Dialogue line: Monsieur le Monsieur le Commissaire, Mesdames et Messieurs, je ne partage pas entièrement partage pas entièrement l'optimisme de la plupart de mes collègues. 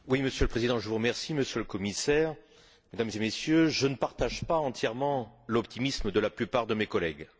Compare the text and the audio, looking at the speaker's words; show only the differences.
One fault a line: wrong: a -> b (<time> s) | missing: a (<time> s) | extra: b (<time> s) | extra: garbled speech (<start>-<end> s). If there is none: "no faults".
extra: Président (0.5 s)
missing: partage pas entièrement (5.4 s)